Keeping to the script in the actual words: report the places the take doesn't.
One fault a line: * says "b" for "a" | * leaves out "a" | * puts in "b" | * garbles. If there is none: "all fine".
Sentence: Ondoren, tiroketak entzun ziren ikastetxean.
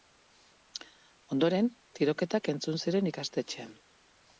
all fine